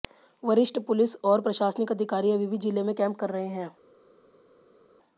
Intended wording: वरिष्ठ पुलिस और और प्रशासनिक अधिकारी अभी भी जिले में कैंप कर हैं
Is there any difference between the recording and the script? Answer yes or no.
yes